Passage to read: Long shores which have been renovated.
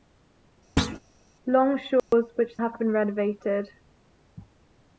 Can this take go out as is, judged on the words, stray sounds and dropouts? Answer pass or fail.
fail